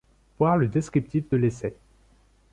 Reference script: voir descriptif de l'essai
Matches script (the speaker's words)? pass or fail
fail